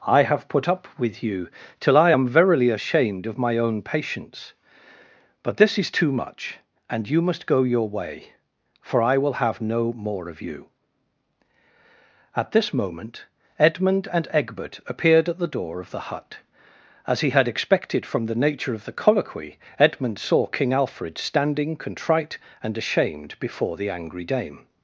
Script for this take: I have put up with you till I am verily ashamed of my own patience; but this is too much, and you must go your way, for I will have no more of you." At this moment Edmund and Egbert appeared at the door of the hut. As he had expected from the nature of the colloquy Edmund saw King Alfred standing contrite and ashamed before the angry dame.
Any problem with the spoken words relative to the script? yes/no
no